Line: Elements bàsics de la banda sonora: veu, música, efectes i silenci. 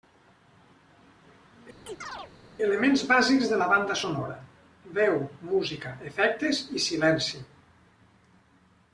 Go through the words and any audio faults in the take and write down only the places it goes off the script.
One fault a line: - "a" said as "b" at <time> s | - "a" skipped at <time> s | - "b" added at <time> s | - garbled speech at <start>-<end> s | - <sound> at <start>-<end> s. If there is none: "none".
- chirp at 1.9-2.3 s